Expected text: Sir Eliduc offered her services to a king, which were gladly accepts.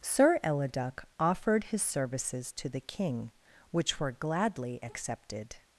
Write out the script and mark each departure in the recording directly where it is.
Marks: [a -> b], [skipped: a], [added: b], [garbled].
Sir Eliduc offered [her -> his] services to [a -> the] king, which were gladly [accepts. -> accepted]